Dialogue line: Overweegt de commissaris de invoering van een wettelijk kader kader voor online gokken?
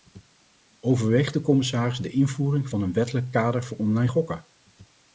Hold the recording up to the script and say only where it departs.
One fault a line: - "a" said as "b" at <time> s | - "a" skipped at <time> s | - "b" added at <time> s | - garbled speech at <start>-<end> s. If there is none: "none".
- "kader" skipped at 3.6 s